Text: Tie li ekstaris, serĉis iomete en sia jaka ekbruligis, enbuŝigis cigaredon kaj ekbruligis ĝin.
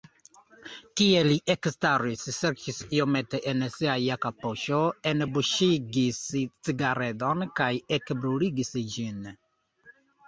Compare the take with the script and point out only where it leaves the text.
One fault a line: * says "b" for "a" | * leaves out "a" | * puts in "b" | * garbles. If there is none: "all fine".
* says "poŝo" for "ekbruligis"